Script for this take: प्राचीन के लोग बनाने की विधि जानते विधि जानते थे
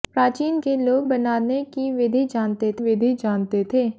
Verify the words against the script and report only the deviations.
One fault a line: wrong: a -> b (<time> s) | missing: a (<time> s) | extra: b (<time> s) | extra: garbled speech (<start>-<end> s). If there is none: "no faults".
no faults